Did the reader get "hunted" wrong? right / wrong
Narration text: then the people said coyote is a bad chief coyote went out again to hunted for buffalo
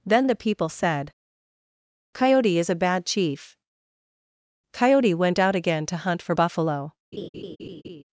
wrong